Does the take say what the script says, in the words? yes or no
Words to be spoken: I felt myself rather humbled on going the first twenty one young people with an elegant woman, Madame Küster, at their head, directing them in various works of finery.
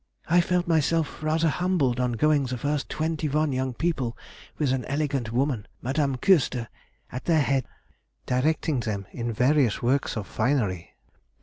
yes